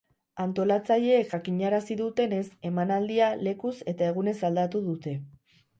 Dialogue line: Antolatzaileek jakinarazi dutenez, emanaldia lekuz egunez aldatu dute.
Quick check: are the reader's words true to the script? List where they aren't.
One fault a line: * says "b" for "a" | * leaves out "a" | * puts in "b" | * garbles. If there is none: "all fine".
* puts in "eta"